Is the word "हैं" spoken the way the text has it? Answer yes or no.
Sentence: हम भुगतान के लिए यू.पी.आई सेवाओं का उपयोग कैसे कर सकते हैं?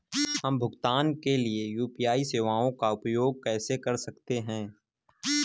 yes